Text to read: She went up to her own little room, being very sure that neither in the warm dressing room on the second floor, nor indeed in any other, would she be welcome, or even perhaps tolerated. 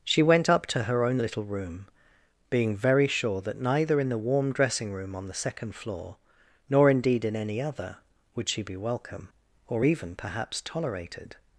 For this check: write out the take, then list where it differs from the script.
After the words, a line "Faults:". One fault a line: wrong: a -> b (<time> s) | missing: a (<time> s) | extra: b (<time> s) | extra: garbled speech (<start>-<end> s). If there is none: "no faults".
She went up to her own little room, being very sure that neither in the warm dressing room on the second floor, nor indeed in any other, would she be welcome, or even perhaps tolerated.
Faults:
no faults